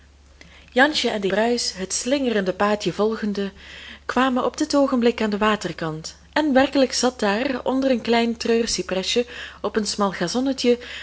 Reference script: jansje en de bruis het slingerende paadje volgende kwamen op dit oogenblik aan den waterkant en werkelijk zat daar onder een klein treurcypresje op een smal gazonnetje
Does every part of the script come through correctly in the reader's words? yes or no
yes